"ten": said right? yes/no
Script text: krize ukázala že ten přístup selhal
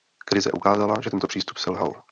no